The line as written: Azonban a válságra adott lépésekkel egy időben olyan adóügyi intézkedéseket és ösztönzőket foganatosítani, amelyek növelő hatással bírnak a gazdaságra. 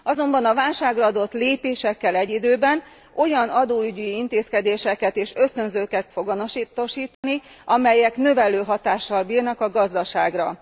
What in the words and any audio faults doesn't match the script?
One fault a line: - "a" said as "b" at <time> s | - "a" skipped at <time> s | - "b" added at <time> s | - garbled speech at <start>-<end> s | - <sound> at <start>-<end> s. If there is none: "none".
- dropout at 7.1-7.2 s